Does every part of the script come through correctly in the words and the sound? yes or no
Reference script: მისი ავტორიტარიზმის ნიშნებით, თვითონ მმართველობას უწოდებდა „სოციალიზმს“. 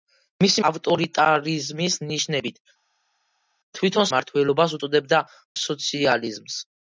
yes